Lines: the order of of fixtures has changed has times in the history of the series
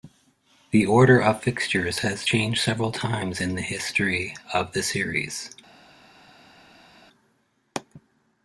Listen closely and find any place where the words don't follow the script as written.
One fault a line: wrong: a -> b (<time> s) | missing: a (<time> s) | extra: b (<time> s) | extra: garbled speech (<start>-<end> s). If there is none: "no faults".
missing: of (1.4 s)
wrong: has -> several (2.6 s)